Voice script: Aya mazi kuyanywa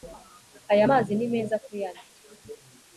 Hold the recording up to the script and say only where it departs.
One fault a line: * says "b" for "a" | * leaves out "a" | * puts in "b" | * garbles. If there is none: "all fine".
* puts in "ni meza"